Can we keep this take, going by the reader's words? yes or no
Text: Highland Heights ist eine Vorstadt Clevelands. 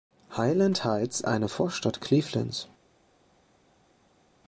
no